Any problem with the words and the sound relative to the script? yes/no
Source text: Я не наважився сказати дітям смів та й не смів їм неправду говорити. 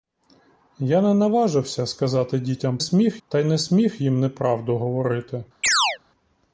yes